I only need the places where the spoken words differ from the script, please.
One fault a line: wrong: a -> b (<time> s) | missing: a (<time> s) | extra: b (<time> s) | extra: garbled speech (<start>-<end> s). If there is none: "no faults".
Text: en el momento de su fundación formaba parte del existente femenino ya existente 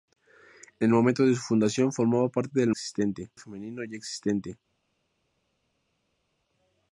no faults